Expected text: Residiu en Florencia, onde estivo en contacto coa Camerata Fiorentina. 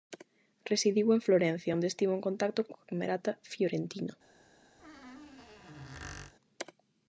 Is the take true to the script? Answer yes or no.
yes